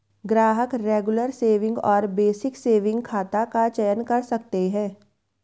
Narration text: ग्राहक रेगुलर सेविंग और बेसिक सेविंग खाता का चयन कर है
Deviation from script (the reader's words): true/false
true